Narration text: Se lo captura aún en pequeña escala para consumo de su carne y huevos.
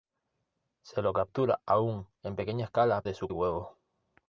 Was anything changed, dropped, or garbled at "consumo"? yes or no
yes